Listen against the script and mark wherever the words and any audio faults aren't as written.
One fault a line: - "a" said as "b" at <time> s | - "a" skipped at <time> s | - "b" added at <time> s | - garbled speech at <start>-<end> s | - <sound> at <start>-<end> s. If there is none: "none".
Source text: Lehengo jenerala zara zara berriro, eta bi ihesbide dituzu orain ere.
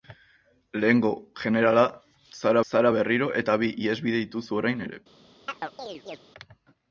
- chirp at 5.5-6.2 s